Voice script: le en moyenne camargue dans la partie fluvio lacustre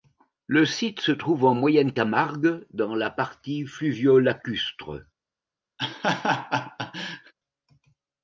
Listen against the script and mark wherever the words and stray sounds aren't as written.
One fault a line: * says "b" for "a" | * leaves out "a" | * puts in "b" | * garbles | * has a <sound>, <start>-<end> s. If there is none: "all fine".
* puts in "site se trouve"
* has a laugh, 5.8-7.3 s